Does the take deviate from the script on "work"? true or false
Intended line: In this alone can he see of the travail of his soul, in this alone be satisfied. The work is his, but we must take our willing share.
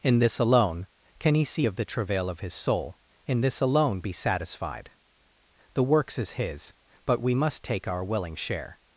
true